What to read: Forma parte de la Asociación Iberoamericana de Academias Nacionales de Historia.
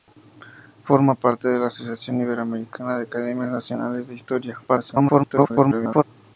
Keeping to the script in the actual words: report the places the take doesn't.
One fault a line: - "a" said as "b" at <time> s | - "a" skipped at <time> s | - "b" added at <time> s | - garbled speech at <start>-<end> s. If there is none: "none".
- garbled speech at 4.7-6.0 s